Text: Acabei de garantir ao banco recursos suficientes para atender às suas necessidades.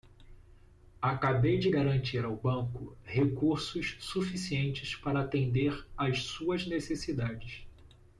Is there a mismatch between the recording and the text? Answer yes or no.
no